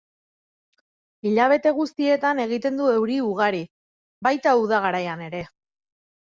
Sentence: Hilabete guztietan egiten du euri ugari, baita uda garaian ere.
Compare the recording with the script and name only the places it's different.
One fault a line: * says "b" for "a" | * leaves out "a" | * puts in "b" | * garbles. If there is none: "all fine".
all fine